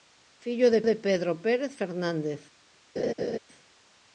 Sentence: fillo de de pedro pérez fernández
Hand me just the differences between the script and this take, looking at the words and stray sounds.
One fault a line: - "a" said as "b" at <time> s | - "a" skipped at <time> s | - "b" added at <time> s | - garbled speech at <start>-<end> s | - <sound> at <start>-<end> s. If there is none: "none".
- laugh at 3.0-3.4 s